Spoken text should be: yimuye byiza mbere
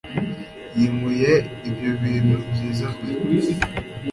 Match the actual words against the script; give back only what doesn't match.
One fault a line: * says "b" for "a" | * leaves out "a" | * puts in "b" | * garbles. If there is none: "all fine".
* puts in "ibyo bintu"